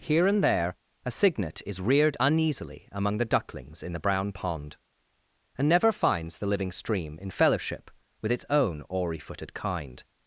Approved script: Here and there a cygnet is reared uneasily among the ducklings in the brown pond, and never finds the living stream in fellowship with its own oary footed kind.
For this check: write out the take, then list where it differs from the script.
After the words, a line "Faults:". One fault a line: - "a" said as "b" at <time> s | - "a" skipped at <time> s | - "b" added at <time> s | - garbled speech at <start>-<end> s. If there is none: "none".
Here and there a cygnet is reared uneasily among the ducklings in the brown pond, and never finds the living stream in fellowship with its own oary footed kind.
Faults:
none